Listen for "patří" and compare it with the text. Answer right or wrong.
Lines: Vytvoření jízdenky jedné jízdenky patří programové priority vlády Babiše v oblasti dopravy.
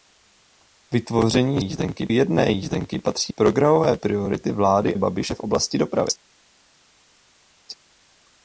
right